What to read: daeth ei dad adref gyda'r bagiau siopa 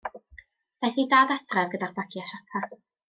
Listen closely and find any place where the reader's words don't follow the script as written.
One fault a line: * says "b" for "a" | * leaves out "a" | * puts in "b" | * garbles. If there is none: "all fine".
all fine